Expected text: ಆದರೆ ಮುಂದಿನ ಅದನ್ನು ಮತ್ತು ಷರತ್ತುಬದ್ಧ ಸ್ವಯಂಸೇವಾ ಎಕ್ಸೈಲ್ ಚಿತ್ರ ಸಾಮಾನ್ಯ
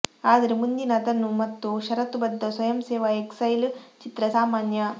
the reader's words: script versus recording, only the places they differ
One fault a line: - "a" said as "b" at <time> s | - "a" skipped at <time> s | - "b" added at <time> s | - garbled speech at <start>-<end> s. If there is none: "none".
none